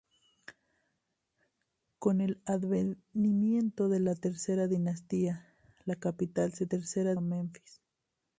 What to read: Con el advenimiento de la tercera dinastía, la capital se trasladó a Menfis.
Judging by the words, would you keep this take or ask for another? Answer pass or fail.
fail